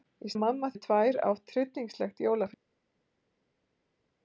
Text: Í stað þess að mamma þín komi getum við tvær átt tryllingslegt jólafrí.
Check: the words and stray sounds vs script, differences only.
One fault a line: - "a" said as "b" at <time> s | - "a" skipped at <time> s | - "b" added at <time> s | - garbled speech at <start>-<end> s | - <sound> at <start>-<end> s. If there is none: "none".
- "stað þess" skipped at 0.3 s
- "þín komi getum" skipped at 0.7 s